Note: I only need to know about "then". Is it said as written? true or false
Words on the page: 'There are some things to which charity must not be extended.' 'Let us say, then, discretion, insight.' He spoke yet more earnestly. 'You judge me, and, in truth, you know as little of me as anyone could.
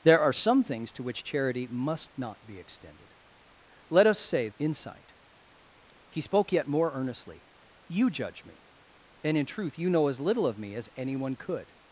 false